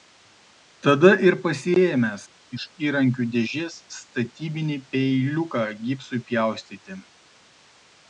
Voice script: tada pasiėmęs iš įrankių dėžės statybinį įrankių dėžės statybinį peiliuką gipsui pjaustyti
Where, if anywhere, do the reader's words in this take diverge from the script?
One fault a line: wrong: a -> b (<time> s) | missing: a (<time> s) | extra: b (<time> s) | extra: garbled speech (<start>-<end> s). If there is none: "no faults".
extra: ir (1.2 s)
missing: įrankių dėžės statybinį (4.8 s)